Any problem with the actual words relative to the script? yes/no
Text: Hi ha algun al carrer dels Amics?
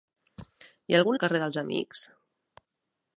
no